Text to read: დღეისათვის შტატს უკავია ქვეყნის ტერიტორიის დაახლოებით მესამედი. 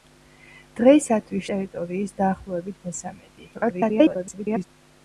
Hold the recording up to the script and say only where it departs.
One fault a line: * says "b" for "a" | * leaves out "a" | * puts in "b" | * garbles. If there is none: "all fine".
* leaves out "შტატს უკავია ქვეყნის"
* garbles